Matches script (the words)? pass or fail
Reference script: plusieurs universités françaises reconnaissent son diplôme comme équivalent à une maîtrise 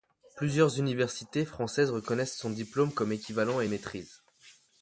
fail